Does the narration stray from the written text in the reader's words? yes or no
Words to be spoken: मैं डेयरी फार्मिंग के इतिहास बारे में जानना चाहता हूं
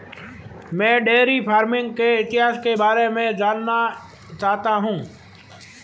yes